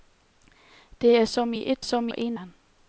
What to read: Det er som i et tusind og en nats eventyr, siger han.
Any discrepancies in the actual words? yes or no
yes